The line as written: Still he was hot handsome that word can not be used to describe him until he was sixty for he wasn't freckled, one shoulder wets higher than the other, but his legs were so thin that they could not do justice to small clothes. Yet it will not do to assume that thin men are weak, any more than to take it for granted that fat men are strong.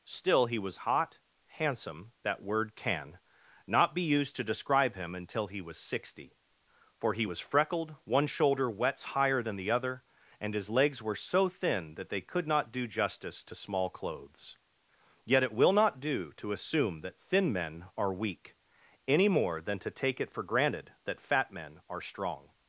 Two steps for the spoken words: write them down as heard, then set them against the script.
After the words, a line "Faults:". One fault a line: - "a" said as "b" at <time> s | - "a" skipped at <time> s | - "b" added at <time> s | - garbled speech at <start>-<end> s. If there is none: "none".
Still he was hot handsome that word can not be used to describe him until he was sixty for he was freckled, one shoulder wets higher than the other, and his legs were so thin that they could not do justice to small clothes. Yet it will not do to assume that thin men are weak, any more than to take it for granted that fat men are strong.
Faults:
- "wasn't" said as "was" at 7.2 s
- "but" said as "and" at 10.4 s